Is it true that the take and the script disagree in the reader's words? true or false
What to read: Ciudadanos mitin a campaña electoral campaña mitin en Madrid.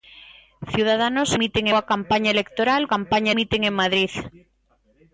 false